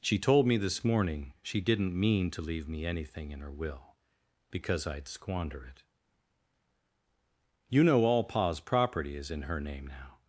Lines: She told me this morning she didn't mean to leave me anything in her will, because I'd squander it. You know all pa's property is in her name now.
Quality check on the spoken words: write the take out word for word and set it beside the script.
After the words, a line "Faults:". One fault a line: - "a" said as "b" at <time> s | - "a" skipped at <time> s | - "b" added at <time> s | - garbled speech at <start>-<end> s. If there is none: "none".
She told me this morning she didn't mean to leave me anything in her will, because I'd squander it. You know all pa's property is in her name now.
Faults:
none